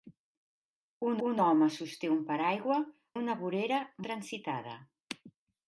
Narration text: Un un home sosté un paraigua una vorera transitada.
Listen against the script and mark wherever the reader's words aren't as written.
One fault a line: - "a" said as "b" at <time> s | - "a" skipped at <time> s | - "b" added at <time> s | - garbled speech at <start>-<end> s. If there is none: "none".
none